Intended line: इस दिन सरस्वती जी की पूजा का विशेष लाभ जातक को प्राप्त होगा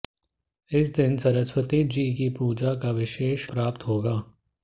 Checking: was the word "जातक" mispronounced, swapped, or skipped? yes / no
yes